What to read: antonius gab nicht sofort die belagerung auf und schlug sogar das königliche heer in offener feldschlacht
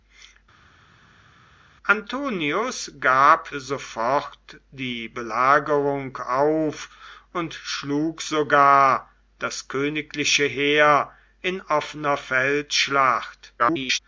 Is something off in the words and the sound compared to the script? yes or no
yes